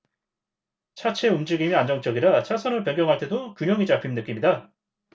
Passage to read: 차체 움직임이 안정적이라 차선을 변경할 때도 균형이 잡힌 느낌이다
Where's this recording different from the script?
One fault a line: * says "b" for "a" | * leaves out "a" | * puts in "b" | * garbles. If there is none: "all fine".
all fine